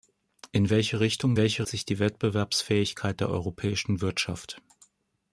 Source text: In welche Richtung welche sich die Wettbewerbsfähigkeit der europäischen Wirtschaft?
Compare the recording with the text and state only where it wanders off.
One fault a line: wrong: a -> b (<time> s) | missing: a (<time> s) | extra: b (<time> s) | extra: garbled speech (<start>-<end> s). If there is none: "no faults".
no faults